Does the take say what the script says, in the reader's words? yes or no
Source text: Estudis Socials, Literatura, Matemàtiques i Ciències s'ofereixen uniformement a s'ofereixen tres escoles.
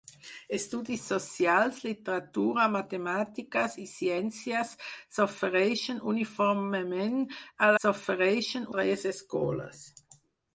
yes